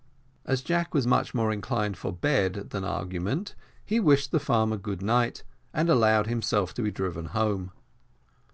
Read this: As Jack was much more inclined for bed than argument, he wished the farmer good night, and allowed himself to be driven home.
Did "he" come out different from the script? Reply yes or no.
no